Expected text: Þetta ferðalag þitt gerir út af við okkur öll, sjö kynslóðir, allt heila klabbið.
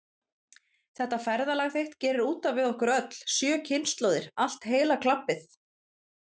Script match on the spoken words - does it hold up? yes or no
yes